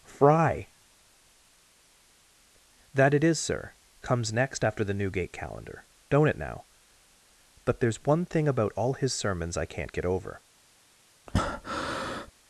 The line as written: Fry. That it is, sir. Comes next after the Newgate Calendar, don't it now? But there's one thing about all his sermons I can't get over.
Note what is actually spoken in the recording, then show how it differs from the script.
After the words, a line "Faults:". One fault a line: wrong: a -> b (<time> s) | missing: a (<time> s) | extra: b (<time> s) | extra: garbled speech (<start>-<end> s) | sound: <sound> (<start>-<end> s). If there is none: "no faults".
Fry. That it is, sir. Comes next after the Newgate Calendar, don't it now? But there's one thing about all his sermons I can't get over.
Faults:
sound: breath (11.3-12.3 s)